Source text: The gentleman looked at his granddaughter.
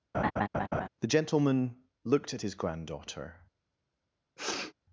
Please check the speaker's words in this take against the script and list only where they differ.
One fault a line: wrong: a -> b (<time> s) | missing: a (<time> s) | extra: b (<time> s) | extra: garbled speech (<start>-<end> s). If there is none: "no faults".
no faults